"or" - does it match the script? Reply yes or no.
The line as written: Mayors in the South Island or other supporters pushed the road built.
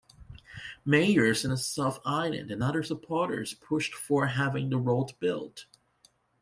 no